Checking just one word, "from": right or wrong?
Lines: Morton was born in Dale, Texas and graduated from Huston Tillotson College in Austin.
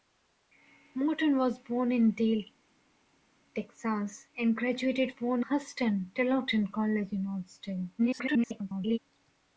wrong